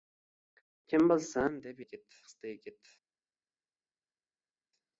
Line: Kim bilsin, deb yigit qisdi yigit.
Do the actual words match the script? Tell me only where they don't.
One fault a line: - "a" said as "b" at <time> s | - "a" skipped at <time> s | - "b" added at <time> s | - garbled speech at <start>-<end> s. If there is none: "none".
none